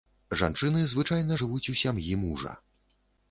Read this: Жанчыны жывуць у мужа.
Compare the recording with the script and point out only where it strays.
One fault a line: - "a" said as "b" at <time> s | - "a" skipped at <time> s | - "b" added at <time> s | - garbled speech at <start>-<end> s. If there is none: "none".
- "звычайна" added at 0.9 s
- "сям'і" added at 1.8 s